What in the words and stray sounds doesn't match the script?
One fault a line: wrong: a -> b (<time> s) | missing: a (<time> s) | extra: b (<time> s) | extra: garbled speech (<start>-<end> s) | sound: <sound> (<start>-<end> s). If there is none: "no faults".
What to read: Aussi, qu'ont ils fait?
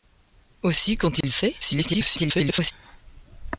sound: dropout (1.2-1.2 s)
extra: garbled speech (1.6-2.7 s)